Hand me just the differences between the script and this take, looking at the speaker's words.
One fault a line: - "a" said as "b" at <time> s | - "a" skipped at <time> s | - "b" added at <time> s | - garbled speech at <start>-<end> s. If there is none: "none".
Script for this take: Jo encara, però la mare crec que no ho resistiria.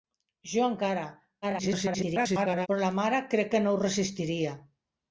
- garbled speech at 1.4-2.7 s